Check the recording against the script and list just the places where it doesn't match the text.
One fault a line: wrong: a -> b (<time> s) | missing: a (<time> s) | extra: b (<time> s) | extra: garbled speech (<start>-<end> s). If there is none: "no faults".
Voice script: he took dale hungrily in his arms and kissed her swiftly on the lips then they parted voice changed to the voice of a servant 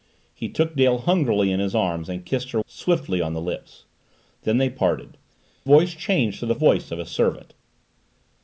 no faults